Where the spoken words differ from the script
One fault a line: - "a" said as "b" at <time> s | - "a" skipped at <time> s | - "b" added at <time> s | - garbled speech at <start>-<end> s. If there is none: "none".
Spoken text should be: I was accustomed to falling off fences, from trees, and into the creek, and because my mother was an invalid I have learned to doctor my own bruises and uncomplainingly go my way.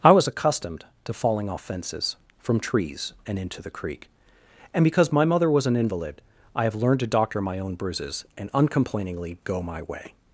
none